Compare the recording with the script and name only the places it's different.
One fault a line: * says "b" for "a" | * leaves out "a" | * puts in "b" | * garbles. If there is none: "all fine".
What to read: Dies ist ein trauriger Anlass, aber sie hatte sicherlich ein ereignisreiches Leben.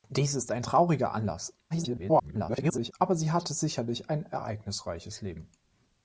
* garbles